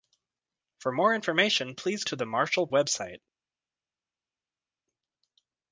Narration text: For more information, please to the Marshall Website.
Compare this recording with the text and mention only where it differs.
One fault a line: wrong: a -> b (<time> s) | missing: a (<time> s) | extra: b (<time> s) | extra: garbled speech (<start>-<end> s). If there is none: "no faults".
no faults